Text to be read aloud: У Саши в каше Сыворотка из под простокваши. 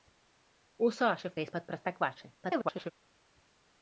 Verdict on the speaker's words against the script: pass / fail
fail